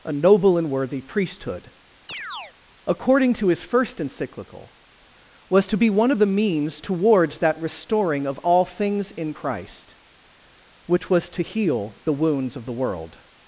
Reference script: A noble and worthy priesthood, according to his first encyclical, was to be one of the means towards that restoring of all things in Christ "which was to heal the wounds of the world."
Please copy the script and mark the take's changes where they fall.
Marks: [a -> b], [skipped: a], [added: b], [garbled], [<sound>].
A noble and worthy priesthood, [chirp] according to his first encyclical, was to be one of the means towards that restoring of all things in Christ "which was to heal the wounds of the world."